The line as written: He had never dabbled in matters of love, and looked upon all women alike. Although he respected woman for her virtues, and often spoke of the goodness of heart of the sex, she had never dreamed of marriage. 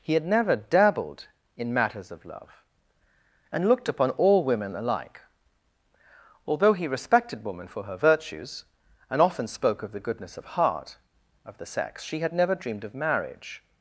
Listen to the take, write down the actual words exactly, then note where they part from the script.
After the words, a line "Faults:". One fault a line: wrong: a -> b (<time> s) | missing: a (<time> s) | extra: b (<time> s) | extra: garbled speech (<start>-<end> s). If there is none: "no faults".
He had never dabbled in matters of love, and looked upon all women alike. Although he respected woman for her virtues, and often spoke of the goodness of heart of the sex, she had never dreamed of marriage.
Faults:
no faults